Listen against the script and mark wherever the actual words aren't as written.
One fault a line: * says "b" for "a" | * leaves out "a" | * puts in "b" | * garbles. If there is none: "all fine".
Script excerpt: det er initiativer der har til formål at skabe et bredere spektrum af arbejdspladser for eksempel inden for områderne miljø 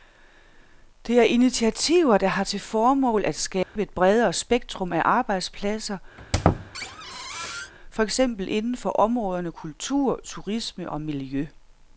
* puts in "kultur turisme og"